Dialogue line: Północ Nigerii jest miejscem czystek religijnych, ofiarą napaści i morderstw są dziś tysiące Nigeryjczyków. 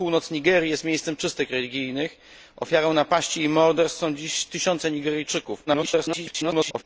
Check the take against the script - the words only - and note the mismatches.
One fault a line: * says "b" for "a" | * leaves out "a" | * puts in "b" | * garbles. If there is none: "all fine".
* garbles